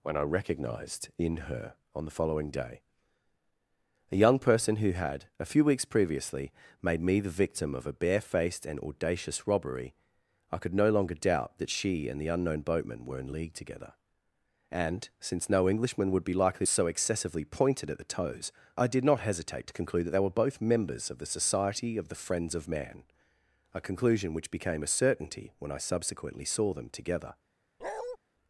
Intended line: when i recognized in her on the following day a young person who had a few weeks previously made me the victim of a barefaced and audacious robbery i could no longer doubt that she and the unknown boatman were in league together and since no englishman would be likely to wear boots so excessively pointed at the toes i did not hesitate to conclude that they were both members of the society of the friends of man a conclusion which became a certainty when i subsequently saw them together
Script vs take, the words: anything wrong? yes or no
yes